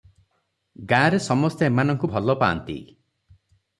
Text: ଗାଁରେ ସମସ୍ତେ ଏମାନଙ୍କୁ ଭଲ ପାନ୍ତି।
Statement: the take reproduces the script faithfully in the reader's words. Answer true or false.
true